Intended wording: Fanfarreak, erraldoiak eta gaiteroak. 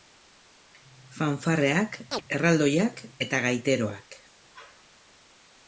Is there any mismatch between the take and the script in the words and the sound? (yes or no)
yes